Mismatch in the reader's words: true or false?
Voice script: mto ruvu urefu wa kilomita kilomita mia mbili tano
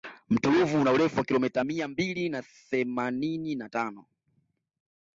true